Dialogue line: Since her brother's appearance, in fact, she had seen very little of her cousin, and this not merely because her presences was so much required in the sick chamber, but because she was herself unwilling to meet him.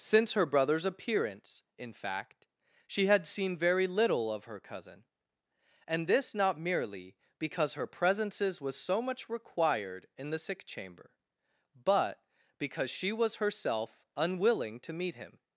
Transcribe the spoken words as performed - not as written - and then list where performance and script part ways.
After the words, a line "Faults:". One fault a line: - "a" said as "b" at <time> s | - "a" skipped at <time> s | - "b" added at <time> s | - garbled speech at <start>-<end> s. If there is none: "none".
Since her brother's appearance, in fact, she had seen very little of her cousin, and this not merely because her presences was so much required in the sick chamber, but because she was herself unwilling to meet him.
Faults:
none